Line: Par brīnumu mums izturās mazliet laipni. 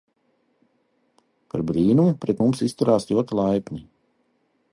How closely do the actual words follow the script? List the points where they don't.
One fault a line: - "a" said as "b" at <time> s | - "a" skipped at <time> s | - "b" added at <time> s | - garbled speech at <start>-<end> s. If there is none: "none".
- "pret" added at 2.2 s
- "mazliet" said as "ļoti" at 3.1 s